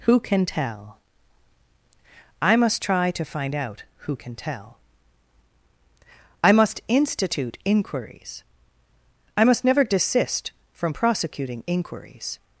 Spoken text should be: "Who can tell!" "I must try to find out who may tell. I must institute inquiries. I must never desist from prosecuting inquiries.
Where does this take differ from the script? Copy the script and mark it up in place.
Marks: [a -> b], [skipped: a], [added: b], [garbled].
"Who can tell!" "I must try to find out who [may -> can] tell. I must institute inquiries. I must never desist from prosecuting inquiries.